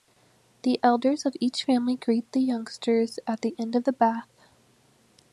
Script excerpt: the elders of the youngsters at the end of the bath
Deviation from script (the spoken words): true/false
true